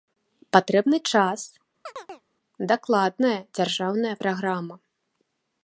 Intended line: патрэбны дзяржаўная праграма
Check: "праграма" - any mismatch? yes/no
no